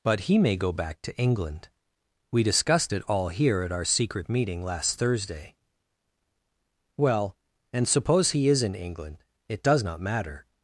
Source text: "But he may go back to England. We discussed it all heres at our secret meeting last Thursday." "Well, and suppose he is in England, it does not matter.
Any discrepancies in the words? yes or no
yes